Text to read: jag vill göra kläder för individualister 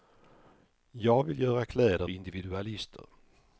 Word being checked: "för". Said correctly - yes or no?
no